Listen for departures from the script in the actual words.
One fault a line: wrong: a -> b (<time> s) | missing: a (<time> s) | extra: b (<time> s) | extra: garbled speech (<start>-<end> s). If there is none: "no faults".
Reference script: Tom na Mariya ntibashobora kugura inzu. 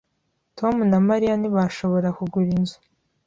no faults